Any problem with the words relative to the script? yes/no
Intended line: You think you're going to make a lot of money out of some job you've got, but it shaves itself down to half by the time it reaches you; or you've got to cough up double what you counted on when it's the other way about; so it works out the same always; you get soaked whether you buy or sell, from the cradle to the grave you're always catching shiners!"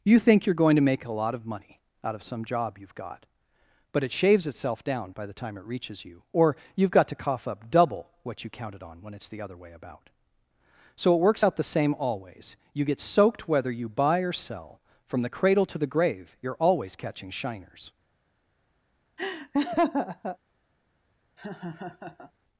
yes